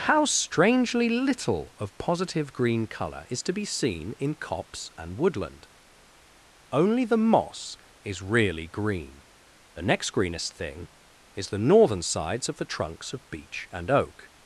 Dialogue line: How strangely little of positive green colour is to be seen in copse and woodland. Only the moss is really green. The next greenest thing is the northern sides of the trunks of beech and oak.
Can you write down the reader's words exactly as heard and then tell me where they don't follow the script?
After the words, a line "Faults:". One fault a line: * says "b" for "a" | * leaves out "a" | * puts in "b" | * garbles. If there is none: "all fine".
How strangely little of positive green colour is to be seen in copse and woodland. Only the moss is really green. The next greenest thing is the northern sides of the trunks of beech and oak.
Faults:
all fine